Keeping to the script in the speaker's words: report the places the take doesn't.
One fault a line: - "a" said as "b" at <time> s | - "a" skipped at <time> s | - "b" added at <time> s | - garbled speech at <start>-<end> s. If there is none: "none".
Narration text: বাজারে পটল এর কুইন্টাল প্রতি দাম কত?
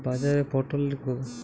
- "কুইন্টাল প্রতি দাম" skipped at 0.9 s